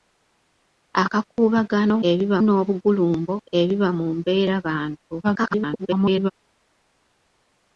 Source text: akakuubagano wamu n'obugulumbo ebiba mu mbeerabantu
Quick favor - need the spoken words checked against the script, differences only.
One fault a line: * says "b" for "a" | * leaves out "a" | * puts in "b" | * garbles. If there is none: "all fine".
* says "ebiba" for "wamu"
* garbles